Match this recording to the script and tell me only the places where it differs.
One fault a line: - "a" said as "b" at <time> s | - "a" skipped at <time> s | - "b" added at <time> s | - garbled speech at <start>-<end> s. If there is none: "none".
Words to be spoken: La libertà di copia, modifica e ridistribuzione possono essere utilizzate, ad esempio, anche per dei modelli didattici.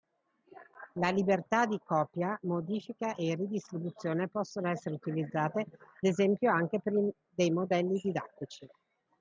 - "ad" skipped at 5.7 s